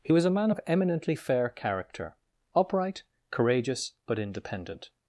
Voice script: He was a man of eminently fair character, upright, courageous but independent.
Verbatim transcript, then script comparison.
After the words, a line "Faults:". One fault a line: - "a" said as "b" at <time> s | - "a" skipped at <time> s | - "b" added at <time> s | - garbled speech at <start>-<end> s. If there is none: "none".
He was a man of eminently fair character, upright, courageous but independent.
Faults:
none